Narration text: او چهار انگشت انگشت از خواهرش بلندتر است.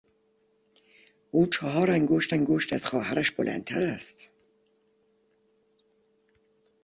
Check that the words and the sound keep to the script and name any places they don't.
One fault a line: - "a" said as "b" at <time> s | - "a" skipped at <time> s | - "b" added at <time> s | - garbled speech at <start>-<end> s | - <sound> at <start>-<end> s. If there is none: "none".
none